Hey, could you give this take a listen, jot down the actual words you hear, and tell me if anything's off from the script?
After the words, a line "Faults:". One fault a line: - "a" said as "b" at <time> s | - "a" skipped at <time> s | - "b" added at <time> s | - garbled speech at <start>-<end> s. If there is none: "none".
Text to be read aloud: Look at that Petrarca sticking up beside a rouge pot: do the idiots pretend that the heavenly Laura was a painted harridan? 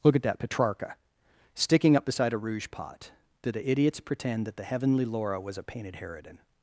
Look at that Petrarca sticking up beside a rouge pot: do the idiots pretend that the heavenly Laura was a painted harridan?
Faults:
none